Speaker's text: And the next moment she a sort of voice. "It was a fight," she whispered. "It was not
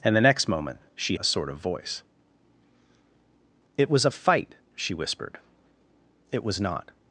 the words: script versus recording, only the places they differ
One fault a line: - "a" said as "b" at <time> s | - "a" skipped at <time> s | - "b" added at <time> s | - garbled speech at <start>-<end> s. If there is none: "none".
none